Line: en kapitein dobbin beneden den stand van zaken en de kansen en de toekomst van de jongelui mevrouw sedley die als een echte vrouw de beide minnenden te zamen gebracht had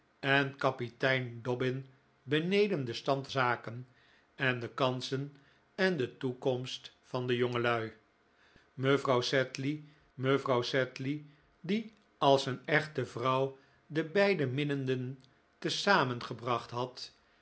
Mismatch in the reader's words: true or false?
true